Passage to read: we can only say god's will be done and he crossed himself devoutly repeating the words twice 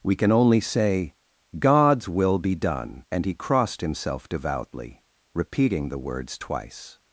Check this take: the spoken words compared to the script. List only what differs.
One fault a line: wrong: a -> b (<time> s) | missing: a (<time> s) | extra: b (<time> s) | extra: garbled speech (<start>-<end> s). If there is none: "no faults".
no faults